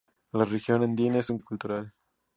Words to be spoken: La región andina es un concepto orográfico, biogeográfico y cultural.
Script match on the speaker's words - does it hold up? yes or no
no